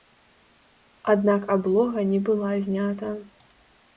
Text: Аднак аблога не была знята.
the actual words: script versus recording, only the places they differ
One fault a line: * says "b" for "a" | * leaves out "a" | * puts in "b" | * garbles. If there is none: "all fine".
all fine